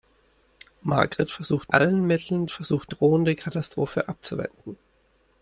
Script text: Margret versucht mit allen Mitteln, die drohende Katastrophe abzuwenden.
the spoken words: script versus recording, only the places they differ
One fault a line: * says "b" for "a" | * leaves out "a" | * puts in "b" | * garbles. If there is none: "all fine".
* leaves out "mit"
* says "versucht" for "die"